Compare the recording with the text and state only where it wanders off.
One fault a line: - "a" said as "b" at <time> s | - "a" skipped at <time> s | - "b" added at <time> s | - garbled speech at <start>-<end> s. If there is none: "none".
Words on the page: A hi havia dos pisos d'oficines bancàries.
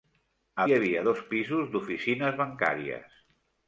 none